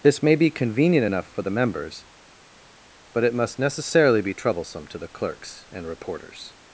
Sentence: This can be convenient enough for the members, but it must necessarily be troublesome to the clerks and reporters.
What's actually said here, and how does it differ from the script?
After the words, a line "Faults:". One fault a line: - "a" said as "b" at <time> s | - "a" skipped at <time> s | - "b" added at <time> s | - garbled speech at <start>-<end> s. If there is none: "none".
This may be convenient enough for the members, but it must necessarily be troublesome to the clerks and reporters.
Faults:
- "can" said as "may" at 0.2 s